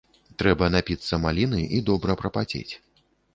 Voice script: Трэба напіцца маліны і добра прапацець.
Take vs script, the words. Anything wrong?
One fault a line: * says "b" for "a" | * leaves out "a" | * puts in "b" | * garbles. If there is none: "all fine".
all fine